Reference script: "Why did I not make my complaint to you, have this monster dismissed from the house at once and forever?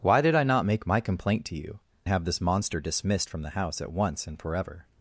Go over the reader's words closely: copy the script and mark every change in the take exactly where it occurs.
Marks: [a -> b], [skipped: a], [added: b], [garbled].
"Why did I not make my complaint to you, have this monster dismissed from the house at once and forever?